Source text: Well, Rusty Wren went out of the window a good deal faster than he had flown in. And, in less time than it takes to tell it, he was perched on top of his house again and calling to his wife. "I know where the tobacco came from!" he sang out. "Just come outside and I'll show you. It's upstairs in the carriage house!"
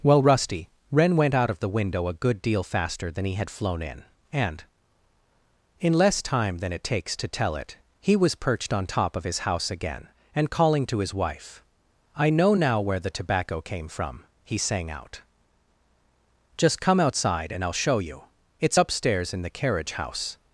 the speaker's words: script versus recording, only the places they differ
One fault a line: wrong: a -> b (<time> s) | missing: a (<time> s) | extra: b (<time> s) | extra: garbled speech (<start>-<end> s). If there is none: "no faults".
extra: now (12.5 s)